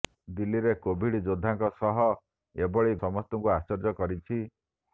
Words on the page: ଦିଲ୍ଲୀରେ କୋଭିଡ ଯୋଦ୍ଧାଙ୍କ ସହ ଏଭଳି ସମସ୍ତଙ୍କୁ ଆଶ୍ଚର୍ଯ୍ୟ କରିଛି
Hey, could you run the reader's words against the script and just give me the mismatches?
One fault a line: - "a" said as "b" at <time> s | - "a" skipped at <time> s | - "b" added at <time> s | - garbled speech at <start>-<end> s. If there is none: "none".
none